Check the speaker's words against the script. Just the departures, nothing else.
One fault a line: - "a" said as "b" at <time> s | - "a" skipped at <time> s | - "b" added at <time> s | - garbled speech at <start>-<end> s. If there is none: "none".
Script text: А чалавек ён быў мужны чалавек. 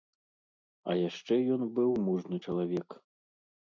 - "чалавек" said as "яшчэ" at 1.1 s